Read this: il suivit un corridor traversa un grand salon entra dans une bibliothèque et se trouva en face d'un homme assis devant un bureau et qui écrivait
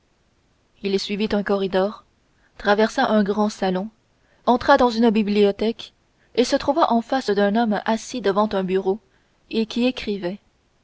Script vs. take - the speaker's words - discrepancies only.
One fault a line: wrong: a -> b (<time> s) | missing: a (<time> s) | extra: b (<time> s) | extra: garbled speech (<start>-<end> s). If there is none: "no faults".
no faults